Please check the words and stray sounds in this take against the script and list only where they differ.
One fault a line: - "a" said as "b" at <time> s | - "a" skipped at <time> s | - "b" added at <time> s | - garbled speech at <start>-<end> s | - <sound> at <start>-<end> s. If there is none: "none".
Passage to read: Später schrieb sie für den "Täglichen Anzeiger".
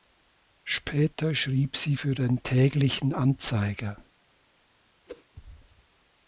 - whoosh at 5.1-5.2 s